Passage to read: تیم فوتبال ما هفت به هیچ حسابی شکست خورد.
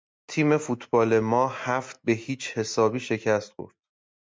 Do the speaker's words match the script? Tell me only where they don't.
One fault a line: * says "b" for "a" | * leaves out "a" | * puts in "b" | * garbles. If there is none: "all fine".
all fine